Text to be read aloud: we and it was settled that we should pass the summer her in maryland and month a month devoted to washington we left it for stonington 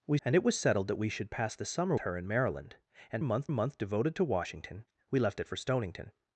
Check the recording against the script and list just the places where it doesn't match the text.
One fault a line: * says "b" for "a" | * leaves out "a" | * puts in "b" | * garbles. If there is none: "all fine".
all fine